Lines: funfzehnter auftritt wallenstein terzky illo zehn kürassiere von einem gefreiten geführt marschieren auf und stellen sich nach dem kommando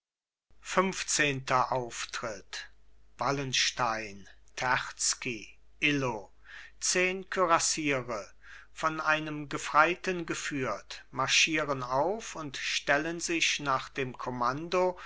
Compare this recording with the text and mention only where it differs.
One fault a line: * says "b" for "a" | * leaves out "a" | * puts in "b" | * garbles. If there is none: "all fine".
all fine